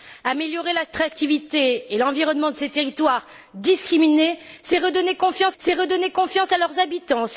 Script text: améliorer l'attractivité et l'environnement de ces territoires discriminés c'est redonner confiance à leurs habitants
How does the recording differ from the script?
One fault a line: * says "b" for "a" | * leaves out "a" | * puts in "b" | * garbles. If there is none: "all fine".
* puts in "c'est redonner confiance"